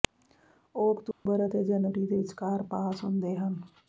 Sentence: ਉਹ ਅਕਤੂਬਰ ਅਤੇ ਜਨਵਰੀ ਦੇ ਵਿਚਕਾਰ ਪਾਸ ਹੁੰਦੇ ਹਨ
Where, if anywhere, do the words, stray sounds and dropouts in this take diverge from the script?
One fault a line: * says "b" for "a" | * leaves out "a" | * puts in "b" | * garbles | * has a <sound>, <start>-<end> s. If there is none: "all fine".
* has a dropout, 1.1-1.3 s